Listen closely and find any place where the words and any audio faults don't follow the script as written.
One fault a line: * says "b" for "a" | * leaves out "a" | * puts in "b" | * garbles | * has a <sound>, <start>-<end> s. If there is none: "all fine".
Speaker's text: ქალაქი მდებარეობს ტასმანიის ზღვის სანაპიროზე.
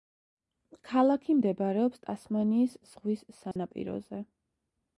* has a dropout, 3.5-3.6 s